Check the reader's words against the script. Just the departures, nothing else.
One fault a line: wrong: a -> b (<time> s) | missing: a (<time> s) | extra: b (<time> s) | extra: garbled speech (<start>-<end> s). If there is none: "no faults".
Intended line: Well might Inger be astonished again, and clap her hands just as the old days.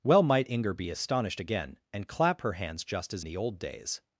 no faults